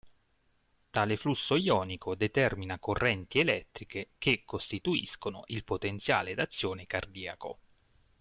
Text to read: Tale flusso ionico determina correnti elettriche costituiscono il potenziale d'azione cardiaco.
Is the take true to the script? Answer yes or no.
no